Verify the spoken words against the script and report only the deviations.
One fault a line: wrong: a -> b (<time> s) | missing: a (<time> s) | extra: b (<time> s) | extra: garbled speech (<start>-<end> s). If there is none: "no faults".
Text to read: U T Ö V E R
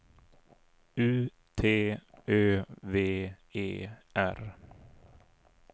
no faults